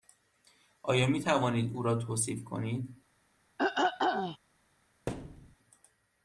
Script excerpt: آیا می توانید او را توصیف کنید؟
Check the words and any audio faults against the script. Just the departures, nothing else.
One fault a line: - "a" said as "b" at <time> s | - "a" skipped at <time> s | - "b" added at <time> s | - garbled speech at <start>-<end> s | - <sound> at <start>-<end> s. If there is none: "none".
- throat clearing at 3.6-4.4 s
- thud at 5.1-5.6 s